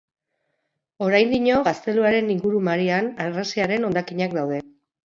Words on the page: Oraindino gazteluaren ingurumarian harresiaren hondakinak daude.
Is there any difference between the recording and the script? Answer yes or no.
no